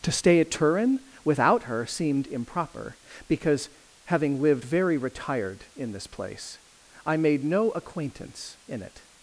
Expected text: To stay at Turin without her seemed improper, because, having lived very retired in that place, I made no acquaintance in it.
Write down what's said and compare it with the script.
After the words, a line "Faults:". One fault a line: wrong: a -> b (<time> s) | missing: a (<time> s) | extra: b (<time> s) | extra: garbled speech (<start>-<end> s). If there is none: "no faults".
To stay at Turin without her seemed improper, because, having lived very retired in this place, I made no acquaintance in it.
Faults:
wrong: that -> this (5.9 s)